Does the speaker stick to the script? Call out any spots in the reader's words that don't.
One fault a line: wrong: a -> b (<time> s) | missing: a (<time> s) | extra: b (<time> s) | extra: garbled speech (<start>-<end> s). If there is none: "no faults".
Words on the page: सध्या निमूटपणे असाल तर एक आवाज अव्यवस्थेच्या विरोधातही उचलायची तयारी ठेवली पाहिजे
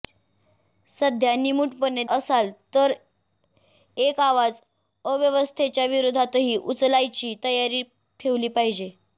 no faults